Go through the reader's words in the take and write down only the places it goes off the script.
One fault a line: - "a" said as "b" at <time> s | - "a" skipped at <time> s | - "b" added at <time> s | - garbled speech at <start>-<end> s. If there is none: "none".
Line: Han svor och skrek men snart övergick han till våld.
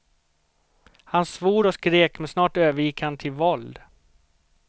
none